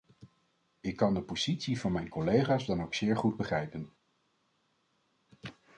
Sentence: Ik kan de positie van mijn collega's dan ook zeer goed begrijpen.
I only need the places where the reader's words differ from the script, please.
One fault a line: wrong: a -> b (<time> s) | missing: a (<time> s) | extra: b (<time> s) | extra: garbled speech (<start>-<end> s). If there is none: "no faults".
no faults